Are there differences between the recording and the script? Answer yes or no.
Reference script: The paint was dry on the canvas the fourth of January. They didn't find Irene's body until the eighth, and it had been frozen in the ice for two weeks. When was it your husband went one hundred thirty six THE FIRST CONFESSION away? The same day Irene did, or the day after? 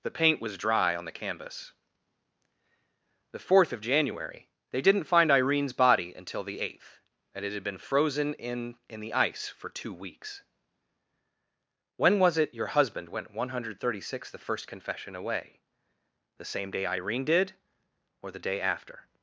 yes